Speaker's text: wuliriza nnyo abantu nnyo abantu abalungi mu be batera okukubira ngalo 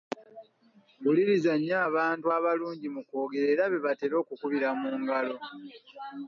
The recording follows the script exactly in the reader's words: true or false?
false